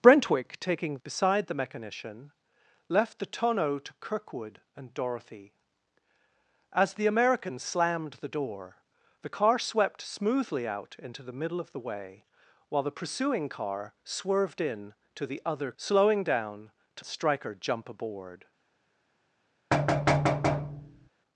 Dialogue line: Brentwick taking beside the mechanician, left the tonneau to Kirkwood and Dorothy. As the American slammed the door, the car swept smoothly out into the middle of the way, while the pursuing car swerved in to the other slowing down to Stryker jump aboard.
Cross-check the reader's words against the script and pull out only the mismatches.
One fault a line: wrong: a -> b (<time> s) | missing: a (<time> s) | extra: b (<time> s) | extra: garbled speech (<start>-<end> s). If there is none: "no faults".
no faults